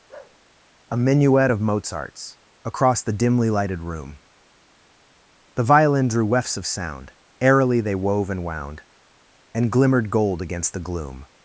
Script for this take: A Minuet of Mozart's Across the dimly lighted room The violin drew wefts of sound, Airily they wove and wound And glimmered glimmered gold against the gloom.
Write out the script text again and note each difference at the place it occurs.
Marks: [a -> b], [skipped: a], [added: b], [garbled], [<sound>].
[bark] A Minuet of Mozart's Across the dimly lighted room The violin drew wefts of sound, Airily they wove and wound And glimmered [skipped: glimmered] gold against the gloom.